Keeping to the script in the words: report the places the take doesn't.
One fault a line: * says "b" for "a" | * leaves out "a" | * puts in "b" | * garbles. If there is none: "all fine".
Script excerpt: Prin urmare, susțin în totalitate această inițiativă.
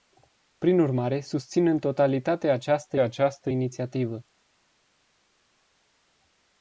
* puts in "această"